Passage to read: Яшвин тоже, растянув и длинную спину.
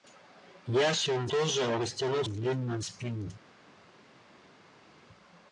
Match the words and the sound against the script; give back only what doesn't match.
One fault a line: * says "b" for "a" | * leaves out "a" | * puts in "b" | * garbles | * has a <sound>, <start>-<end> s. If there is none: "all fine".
all fine